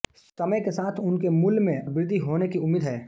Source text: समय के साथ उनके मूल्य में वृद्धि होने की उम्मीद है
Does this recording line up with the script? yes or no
yes